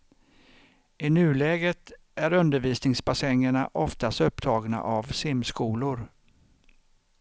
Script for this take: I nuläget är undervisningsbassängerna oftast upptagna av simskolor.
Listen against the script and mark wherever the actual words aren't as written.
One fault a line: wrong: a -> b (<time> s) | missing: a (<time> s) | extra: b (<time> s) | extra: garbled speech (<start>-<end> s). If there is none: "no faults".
no faults